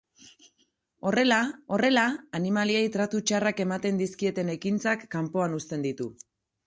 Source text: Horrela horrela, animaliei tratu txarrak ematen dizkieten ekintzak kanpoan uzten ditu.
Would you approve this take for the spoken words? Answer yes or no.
yes